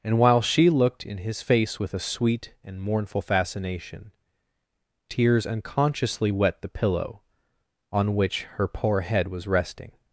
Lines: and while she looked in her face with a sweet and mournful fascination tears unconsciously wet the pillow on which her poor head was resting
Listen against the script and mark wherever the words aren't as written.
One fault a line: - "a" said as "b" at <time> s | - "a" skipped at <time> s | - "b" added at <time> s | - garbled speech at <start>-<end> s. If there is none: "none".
- "her" said as "his" at 1.2 s